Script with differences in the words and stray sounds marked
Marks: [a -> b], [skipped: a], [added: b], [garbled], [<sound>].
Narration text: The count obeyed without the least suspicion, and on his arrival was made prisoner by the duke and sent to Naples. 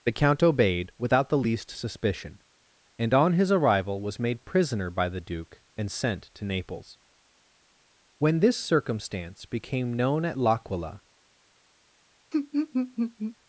The count obeyed without the least suspicion, and on his arrival was made prisoner by the duke and sent to Naples. [added: When this circumstance became known at L'Aquila] [laugh]